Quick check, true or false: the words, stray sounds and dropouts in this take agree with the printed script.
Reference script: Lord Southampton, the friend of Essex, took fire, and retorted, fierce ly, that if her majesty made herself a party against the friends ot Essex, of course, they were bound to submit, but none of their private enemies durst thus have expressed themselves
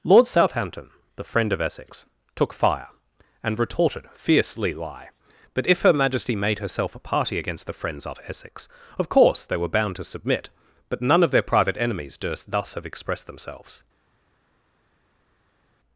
false